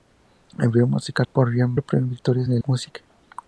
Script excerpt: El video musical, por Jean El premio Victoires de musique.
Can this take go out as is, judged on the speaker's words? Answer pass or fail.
pass